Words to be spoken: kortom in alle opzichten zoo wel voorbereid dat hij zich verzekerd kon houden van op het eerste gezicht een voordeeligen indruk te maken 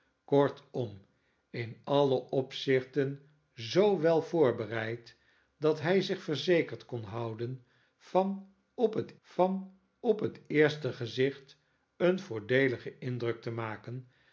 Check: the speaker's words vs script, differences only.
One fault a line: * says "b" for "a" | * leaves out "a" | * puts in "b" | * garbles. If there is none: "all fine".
* puts in "van op het"